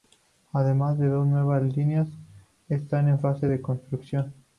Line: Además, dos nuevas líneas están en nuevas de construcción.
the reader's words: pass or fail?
fail